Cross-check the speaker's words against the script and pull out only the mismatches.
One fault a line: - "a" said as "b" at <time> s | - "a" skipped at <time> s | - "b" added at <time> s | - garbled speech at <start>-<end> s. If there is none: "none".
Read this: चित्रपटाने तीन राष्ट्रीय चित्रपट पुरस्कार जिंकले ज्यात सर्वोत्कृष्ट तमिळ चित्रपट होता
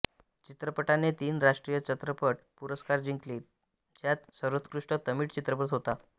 none